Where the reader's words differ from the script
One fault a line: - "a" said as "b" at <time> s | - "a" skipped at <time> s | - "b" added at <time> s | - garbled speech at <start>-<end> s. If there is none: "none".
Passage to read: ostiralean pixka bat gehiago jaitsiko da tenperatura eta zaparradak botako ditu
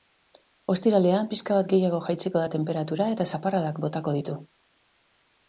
none